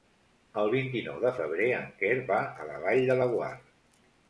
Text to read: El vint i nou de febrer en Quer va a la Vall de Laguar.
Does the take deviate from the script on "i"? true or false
false